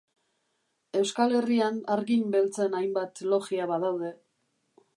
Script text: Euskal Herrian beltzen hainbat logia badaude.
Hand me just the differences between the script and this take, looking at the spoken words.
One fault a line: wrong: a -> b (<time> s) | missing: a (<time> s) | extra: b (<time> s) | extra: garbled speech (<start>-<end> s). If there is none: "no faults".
extra: hargin (1.9 s)